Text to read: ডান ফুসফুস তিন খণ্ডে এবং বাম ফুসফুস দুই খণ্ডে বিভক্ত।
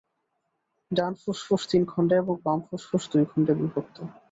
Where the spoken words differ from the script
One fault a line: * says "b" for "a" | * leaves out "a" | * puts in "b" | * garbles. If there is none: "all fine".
all fine